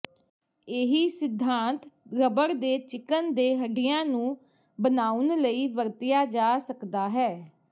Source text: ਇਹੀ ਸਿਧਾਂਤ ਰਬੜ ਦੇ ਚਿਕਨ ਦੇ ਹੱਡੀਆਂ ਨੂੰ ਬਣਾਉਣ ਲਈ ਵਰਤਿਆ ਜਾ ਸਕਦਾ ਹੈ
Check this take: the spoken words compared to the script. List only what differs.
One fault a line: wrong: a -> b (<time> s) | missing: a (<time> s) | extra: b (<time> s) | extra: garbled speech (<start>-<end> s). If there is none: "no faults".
no faults